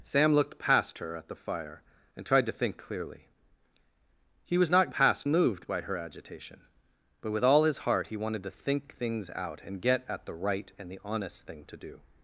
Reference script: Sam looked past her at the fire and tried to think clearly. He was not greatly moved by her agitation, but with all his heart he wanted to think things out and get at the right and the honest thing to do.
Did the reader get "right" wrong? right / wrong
right